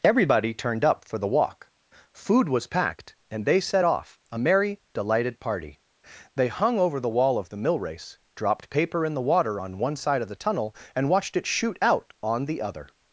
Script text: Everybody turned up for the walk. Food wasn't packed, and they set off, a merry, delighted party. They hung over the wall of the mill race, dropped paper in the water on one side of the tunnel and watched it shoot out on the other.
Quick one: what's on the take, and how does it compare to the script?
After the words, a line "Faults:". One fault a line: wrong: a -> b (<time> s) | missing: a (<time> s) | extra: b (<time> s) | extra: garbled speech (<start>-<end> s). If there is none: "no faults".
Everybody turned up for the walk. Food was packed, and they set off, a merry, delighted party. They hung over the wall of the mill race, dropped paper in the water on one side of the tunnel and watched it shoot out on the other.
Faults:
wrong: wasn't -> was (2.5 s)